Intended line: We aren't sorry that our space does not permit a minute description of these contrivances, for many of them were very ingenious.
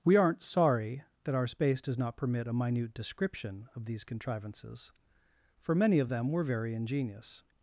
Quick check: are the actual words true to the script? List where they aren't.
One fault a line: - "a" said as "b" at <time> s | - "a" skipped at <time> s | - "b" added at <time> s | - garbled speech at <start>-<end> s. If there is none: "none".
none